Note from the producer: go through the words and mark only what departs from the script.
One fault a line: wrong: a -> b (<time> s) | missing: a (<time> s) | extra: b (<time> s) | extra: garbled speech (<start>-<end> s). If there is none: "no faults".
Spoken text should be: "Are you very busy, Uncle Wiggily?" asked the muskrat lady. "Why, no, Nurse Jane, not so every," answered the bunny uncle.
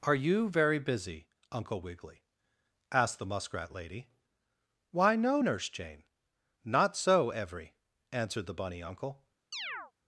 no faults